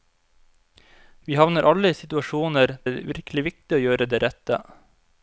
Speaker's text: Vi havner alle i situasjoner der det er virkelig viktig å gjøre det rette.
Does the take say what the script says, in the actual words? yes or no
no